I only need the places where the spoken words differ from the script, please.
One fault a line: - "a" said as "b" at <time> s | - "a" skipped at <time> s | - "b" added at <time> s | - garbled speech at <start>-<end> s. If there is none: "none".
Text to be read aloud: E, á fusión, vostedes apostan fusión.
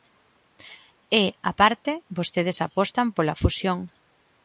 - "fusión" said as "parte" at 1.6 s
- "pola" added at 3.1 s